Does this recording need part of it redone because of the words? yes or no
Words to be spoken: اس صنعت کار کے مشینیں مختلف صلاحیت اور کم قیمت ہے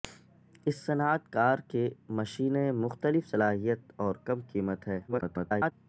yes